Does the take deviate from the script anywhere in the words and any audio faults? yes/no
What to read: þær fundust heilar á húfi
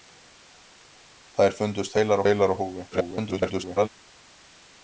yes